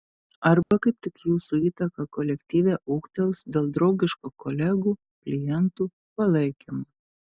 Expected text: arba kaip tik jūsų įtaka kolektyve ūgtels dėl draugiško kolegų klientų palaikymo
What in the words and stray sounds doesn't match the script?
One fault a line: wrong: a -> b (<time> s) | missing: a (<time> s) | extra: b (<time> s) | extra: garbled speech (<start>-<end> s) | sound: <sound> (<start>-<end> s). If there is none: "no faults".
sound: dropout (0.6-0.7 s)